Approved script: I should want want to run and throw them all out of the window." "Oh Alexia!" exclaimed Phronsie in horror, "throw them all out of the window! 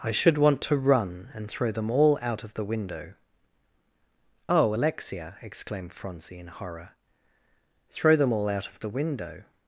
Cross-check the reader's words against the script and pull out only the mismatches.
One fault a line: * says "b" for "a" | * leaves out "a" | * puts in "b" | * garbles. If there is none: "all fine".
* leaves out "want"